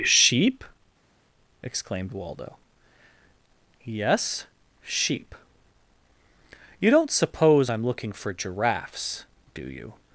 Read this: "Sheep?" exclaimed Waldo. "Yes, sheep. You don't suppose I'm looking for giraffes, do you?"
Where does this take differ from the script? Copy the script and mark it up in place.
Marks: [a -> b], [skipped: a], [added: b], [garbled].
"Sheep?" exclaimed Waldo. "Yes, sheep. You don't suppose I'm looking for giraffes, do you?"